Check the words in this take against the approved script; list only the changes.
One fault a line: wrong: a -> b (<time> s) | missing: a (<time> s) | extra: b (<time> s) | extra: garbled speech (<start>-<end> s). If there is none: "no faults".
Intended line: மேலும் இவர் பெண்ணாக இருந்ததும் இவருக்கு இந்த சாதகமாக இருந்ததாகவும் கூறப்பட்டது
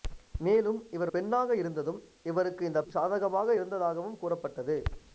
no faults